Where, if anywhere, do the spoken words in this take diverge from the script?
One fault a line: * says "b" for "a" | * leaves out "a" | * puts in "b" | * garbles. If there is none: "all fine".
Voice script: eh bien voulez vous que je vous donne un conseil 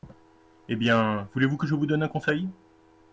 all fine